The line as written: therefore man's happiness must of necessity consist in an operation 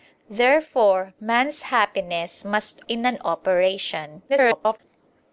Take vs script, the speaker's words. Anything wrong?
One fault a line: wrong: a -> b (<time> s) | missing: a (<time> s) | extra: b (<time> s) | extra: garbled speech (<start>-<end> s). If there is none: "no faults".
missing: of necessity consist (2.8 s)
extra: garbled speech (4.3-4.8 s)